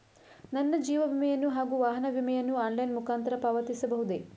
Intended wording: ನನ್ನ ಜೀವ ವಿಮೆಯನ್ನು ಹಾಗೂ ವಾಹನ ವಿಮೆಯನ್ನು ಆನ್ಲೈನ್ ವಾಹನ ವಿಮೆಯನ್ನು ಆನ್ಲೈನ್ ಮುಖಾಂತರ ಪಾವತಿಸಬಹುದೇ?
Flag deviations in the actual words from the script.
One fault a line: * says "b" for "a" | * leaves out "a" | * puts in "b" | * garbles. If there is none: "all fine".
* leaves out "ವಾಹನ ವಿಮೆಯನ್ನು ಆನ್ಲೈನ್"